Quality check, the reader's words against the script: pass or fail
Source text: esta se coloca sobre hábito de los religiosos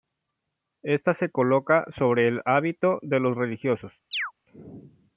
fail